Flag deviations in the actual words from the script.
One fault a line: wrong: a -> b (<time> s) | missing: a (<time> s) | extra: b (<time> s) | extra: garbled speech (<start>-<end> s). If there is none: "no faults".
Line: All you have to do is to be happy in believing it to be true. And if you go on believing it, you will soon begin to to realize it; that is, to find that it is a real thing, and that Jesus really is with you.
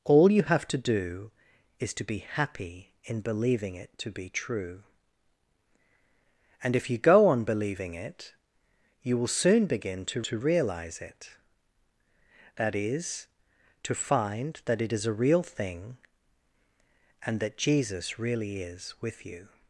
no faults